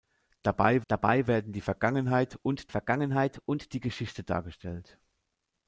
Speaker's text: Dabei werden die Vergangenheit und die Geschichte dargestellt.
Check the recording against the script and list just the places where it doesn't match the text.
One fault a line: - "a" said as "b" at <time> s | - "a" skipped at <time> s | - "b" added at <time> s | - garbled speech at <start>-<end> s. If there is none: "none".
- "dabei" added at 0.9 s
- "Vergangenheit und" added at 2.7 s